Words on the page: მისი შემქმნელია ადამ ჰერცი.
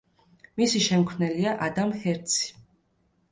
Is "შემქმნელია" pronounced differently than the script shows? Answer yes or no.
no